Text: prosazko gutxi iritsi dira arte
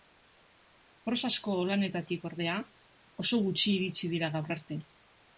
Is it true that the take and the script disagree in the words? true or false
true